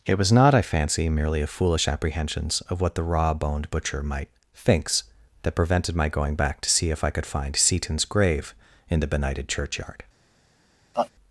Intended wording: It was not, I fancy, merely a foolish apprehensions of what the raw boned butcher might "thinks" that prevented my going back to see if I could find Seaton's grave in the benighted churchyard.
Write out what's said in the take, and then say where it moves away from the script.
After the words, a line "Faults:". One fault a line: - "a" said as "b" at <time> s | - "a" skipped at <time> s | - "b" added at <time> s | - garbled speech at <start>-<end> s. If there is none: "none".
It was not, I fancy, merely a foolish apprehensions of what the raw boned butcher might "thinks" that prevented my going back to see if I could find Seaton's grave in the benighted churchyard.
Faults:
none